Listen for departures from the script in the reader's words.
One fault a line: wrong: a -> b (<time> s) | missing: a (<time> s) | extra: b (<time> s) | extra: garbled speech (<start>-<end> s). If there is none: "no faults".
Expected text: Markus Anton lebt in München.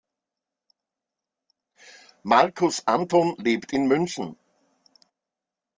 no faults